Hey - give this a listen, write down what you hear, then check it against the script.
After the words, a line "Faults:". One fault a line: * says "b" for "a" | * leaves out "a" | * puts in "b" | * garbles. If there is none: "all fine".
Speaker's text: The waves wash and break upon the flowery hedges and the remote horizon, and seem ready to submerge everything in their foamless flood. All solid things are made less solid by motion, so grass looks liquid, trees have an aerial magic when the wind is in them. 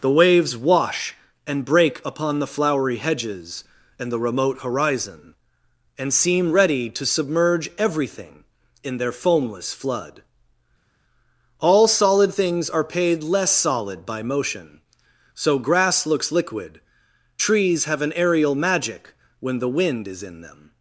The waves wash and break upon the flowery hedges and the remote horizon, and seem ready to submerge everything in their foamless flood. All solid things are paid less solid by motion, so grass looks liquid, trees have an aerial magic when the wind is in them.
Faults:
* says "paid" for "made"